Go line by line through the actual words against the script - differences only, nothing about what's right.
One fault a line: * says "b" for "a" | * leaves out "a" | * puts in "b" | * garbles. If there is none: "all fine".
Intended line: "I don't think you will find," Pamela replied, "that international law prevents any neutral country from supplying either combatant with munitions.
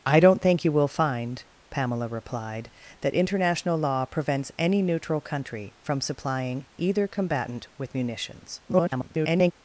* garbles